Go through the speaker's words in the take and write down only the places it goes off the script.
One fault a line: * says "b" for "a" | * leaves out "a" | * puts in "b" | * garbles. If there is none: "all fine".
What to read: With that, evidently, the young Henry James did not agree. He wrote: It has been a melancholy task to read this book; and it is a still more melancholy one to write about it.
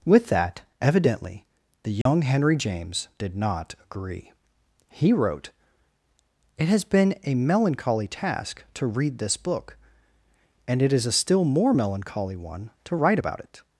all fine